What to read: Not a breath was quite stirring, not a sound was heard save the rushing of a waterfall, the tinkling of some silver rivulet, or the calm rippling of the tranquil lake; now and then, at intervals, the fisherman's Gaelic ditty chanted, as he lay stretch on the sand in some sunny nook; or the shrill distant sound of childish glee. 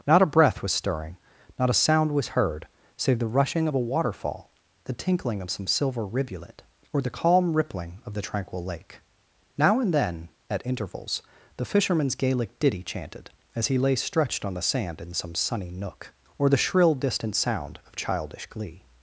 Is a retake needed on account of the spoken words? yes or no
yes